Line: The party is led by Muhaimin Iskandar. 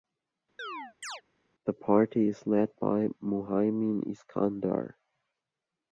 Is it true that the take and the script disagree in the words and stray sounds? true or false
true